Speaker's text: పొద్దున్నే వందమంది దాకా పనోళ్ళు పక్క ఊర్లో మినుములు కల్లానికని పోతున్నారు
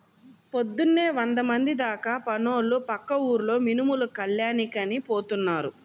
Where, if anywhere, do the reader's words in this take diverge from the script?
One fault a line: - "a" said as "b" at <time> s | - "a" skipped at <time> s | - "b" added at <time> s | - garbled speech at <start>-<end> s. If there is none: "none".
none